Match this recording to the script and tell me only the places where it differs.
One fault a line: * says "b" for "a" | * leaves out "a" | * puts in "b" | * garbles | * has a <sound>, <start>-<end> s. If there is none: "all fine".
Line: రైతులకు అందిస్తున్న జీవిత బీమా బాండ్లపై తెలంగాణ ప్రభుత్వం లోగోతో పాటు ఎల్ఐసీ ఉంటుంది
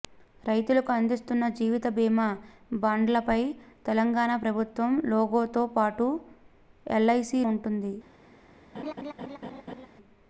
* has a laugh, 8.7-9.9 s